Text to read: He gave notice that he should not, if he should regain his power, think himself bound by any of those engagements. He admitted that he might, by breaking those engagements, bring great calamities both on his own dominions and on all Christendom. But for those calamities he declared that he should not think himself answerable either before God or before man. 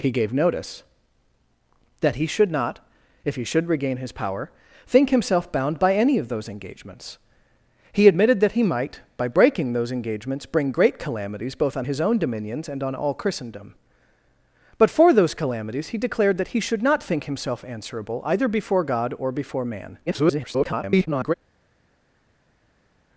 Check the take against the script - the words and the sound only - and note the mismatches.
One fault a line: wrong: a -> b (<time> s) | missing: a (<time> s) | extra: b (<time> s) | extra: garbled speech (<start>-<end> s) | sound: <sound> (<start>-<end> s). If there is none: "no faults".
extra: garbled speech (20.1-21.3 s)